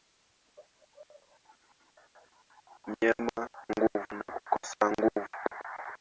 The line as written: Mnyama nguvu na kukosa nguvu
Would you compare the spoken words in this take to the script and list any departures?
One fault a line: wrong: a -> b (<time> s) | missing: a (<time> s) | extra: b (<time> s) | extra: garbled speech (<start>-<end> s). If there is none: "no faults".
no faults